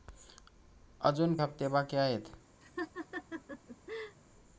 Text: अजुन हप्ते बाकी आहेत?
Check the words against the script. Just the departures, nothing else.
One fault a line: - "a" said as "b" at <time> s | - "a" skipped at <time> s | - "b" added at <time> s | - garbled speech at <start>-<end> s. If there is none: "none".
none